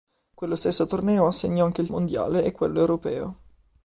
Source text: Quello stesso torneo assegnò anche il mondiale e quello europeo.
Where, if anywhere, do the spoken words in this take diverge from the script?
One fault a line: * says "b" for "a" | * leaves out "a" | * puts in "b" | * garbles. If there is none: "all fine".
all fine